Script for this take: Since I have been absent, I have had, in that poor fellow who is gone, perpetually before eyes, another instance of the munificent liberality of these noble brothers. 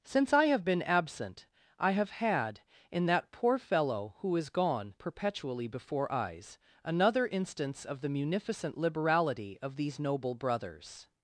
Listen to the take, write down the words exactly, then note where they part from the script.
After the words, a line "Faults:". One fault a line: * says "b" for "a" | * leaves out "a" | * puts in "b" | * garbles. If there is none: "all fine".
Since I have been absent, I have had, in that poor fellow who is gone, perpetually before eyes, another instance of the munificent liberality of these noble brothers.
Faults:
all fine